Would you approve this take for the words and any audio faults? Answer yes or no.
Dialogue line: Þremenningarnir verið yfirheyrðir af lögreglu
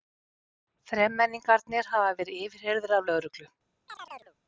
no